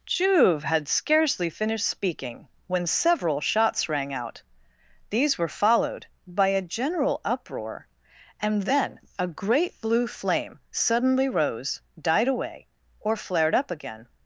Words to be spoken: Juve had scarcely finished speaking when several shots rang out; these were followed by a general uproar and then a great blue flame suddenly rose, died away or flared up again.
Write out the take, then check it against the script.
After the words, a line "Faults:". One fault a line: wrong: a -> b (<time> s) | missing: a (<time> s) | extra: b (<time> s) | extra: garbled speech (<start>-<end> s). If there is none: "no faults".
Juve had scarcely finished speaking when several shots rang out; these were followed by a general uproar and then a great blue flame suddenly rose, died away or flared up again.
Faults:
no faults